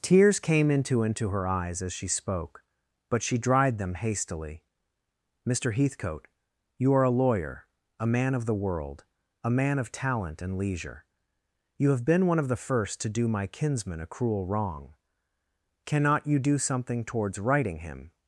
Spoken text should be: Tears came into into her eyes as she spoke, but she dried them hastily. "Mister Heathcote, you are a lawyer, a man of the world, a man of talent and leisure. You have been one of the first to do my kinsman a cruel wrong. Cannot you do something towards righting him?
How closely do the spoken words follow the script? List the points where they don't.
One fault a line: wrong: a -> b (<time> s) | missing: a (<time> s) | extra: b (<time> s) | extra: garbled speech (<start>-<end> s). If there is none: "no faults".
no faults